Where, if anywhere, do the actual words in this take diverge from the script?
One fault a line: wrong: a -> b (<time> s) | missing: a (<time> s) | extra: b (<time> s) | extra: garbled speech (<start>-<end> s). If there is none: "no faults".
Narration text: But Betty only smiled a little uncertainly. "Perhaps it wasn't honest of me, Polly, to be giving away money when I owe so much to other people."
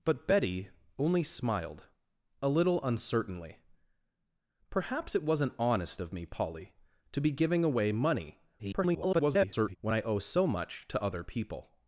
extra: garbled speech (8.6-9.8 s)